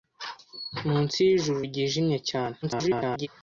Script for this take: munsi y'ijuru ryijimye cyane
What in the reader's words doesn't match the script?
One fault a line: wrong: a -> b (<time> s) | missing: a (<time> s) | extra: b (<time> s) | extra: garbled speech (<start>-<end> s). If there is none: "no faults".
extra: garbled speech (2.6-3.3 s)